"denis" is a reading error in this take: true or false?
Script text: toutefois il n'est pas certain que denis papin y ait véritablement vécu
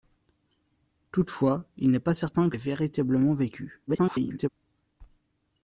true